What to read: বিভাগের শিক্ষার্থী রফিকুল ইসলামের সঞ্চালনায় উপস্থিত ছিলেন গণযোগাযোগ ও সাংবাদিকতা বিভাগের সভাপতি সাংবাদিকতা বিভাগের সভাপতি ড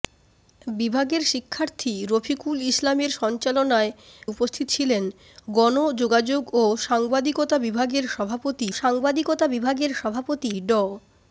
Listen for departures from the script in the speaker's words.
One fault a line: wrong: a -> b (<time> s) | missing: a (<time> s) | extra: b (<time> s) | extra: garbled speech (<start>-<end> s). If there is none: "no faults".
no faults